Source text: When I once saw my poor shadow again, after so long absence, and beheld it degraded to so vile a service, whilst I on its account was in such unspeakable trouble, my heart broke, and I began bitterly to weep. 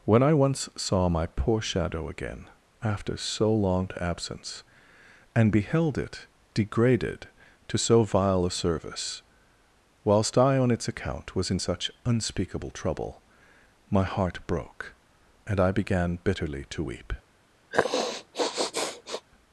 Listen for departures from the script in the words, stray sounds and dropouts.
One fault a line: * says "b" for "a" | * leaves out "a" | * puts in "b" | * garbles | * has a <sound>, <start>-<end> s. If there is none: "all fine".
* has a sniff, 17.7-19.3 s